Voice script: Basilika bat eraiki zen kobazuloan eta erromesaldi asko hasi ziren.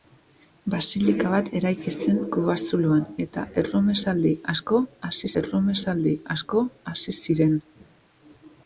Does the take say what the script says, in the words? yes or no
no